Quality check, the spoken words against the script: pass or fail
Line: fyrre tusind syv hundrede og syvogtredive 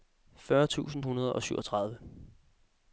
fail